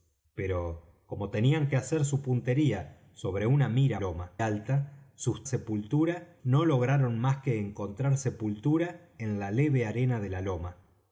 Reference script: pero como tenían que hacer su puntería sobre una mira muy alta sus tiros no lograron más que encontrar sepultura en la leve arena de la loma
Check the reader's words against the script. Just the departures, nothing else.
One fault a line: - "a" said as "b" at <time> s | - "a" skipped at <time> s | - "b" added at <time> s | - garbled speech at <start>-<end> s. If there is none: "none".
- "muy" said as "loma" at 4.0 s
- "tiros" said as "sepultura" at 5.4 s